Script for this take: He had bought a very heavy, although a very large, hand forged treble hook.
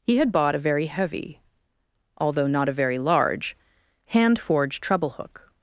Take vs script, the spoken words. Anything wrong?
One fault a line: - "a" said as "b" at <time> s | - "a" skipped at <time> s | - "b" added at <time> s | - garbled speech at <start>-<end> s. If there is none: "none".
- "not" added at 2.5 s